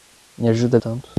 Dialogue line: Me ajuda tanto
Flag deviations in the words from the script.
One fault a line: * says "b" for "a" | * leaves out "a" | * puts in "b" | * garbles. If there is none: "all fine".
all fine